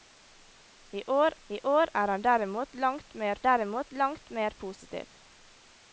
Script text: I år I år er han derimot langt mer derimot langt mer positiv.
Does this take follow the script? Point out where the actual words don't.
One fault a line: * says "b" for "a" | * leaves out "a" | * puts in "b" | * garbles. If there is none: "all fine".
all fine